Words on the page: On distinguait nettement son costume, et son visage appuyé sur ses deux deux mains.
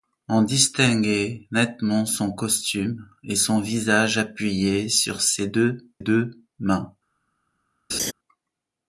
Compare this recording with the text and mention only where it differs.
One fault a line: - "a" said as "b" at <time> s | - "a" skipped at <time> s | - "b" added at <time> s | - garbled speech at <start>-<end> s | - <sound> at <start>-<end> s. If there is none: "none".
- laugh at 7.9-8.1 s